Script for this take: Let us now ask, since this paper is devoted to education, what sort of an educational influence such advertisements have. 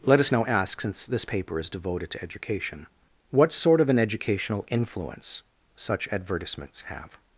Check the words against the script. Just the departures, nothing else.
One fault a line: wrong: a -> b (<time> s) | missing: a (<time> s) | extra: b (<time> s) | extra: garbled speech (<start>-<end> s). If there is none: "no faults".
no faults